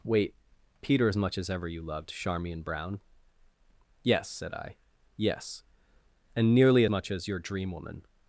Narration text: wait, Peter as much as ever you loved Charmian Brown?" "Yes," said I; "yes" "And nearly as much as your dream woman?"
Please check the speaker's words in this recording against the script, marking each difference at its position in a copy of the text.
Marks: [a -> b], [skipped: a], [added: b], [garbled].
wait, Peter as much as ever you loved Charmian Brown?" "Yes," said I; "yes" "And nearly [skipped: as] much as your dream woman?"